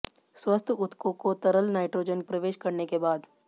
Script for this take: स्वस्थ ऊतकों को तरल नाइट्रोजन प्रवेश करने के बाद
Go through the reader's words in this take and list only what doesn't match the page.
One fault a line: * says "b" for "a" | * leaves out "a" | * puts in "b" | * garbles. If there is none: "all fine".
all fine